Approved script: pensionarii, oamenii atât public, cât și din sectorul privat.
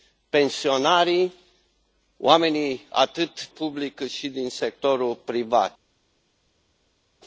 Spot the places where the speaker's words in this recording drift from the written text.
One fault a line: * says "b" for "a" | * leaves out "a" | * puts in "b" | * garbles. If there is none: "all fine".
all fine